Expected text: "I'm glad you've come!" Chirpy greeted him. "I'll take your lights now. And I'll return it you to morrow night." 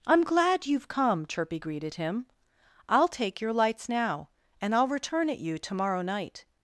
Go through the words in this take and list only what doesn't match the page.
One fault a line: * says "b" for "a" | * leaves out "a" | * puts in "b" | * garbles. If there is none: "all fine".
all fine